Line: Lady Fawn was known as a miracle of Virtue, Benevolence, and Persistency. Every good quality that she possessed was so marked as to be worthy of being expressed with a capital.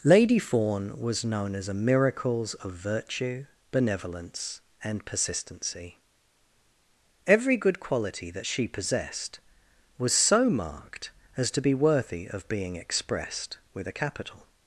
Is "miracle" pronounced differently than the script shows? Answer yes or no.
yes